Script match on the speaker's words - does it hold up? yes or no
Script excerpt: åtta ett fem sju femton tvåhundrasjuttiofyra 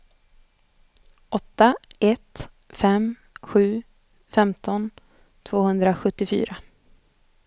yes